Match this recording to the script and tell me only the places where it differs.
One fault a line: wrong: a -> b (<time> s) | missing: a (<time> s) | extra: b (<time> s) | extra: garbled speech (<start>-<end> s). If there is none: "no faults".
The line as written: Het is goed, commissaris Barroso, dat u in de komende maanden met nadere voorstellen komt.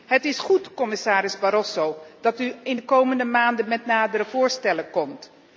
no faults